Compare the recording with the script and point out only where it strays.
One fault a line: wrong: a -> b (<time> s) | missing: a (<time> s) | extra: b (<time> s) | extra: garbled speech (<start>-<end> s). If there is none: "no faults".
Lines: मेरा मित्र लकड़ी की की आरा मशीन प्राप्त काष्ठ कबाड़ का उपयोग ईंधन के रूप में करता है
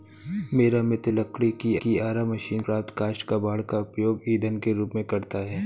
no faults